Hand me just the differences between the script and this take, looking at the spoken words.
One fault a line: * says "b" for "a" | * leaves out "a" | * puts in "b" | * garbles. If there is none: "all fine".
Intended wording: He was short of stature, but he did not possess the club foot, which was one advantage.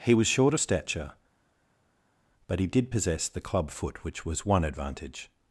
* leaves out "not"